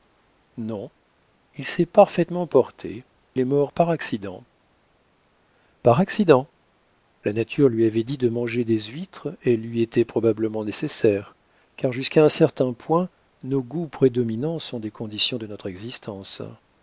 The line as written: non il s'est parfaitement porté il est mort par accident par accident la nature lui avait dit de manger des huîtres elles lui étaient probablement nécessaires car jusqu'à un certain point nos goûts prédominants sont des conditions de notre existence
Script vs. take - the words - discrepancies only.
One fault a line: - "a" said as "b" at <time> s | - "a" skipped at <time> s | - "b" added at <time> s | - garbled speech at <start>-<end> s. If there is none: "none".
- "il" skipped at 3.0 s